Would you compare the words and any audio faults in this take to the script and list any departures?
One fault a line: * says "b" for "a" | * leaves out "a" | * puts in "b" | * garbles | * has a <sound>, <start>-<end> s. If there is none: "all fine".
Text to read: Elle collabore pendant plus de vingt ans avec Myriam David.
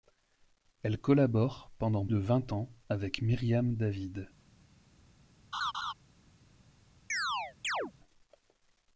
* leaves out "plus"
* has a laugh, 5.5-5.9 s
* has a chirp, 7.1-7.9 s